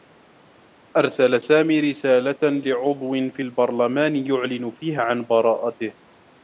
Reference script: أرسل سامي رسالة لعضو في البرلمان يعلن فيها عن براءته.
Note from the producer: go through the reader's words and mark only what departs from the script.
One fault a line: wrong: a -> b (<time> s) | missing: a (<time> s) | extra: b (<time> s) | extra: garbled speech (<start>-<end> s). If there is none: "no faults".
no faults